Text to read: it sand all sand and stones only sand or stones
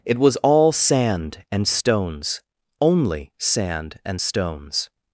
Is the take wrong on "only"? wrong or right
right